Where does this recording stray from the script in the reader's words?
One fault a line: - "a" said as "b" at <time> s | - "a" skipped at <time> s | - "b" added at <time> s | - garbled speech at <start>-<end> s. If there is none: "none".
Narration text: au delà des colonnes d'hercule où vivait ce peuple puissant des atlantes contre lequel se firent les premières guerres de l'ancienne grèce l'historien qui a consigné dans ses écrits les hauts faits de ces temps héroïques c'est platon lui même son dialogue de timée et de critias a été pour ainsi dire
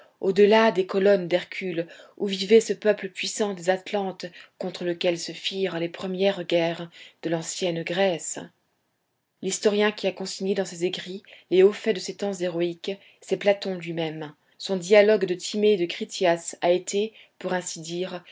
none